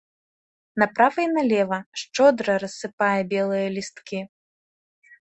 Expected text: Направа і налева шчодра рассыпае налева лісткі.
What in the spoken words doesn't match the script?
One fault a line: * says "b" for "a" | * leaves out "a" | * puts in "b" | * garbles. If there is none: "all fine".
* says "белыя" for "налева"